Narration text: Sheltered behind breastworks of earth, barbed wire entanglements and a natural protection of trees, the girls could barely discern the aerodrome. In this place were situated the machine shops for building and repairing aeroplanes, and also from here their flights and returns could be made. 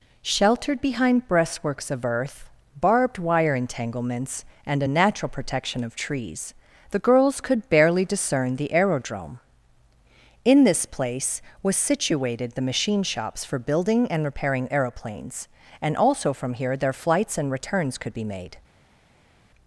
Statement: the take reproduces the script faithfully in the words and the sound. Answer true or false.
false